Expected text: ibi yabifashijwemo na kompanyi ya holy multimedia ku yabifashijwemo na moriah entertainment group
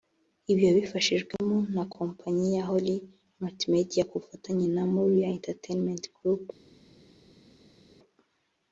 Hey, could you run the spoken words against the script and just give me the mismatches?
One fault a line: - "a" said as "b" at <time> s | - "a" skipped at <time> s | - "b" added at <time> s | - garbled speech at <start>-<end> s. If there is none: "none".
- "yabifashijwemo" said as "bufatanye" at 4.2 s